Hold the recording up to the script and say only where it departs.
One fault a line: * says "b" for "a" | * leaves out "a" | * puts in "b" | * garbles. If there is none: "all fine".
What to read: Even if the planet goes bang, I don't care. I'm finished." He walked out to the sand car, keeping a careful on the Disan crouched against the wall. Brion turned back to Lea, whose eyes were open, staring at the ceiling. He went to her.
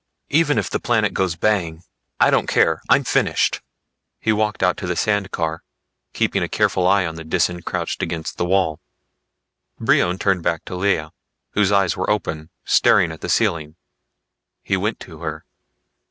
* puts in "eye"